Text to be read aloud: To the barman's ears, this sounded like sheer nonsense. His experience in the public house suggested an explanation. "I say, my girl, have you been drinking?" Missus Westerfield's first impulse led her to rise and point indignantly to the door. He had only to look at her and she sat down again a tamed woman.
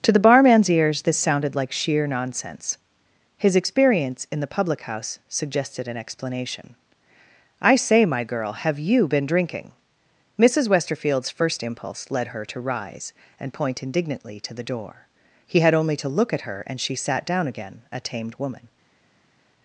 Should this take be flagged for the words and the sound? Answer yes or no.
no